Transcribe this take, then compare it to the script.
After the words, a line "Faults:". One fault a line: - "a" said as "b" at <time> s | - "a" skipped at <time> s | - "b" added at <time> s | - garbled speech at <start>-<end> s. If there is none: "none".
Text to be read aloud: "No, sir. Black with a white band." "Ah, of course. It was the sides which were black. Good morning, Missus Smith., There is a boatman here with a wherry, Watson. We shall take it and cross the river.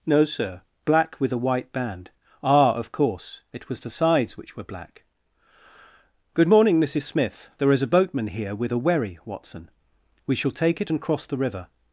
"No, sir. Black with a white band." "Ah, of course. It was the sides which were black. Good morning, Missus Smith., There is a boatman here with a wherry, Watson. We shall take it and cross the river.
Faults:
none